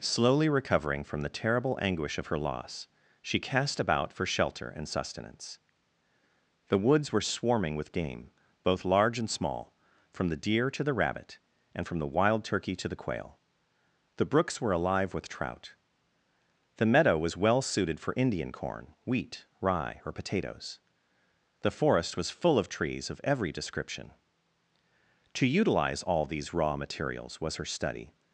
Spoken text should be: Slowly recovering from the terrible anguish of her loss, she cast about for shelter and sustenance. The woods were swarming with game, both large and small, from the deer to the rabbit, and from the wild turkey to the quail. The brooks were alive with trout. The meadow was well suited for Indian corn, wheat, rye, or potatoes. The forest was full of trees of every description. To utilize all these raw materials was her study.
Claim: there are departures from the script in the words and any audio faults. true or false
false